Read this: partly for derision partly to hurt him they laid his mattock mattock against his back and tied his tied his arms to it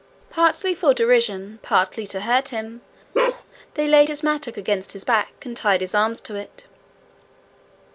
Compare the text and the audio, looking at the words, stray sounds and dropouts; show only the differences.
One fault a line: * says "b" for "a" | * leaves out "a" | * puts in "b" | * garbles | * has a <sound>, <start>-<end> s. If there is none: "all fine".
* has a bark, 3.1-3.4 s
* leaves out "mattock"
* leaves out "tied his"